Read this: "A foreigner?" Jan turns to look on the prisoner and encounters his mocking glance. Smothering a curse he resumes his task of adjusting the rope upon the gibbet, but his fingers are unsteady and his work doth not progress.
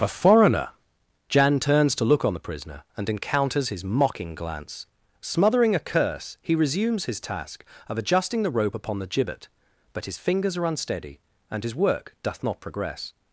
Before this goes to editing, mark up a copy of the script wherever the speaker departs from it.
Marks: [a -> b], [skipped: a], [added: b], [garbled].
"A foreigner?" Jan turns to look on the prisoner and encounters his mocking glance. Smothering a curse he resumes his task of adjusting the rope upon the gibbet, but his fingers are unsteady and his work doth not progress.